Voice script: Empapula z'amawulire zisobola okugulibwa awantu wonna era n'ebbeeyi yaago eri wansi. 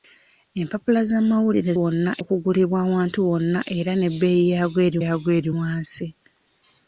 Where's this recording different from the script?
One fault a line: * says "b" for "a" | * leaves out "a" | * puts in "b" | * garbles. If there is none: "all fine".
* says "wonna" for "zisobola"
* puts in "yaago eri"